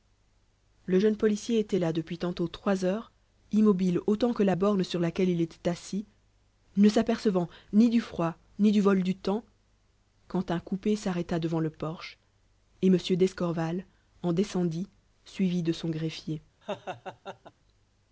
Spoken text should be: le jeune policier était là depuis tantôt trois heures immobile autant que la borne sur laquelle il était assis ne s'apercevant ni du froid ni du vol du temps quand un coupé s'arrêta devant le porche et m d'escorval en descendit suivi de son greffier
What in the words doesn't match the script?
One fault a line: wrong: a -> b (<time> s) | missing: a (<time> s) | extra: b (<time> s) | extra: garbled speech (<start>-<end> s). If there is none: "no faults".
no faults